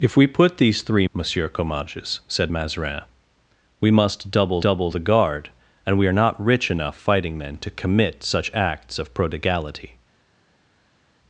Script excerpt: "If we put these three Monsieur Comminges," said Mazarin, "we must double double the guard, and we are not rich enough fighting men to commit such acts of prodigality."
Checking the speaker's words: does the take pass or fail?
pass